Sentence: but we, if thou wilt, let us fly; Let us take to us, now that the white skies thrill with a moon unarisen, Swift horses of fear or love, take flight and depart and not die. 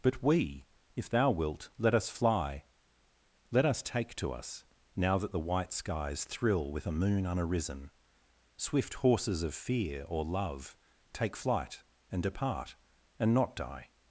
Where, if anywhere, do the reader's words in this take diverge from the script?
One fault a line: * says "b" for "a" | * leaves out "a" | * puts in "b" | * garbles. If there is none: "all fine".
all fine